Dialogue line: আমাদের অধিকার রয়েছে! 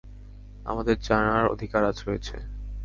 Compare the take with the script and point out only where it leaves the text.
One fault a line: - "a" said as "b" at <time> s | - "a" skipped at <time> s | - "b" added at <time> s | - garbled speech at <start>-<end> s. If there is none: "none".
- "জানার" added at 1.0 s